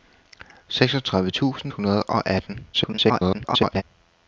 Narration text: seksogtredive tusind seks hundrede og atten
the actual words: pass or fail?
fail